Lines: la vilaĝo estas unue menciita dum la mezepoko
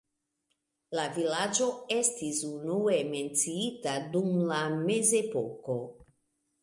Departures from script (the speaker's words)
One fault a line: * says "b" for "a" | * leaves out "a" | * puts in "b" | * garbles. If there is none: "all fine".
* says "estis" for "estas"